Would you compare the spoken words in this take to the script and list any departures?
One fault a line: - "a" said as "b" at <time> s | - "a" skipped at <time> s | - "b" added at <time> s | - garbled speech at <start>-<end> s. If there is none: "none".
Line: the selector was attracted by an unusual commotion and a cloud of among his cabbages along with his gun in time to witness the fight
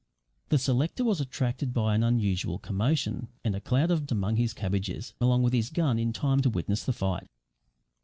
none